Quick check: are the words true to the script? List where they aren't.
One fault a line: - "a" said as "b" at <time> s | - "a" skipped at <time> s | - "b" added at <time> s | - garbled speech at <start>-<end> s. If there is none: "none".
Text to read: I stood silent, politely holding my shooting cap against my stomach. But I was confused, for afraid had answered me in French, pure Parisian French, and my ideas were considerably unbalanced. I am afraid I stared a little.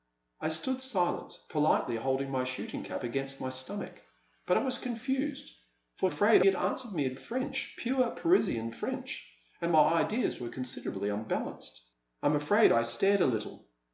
none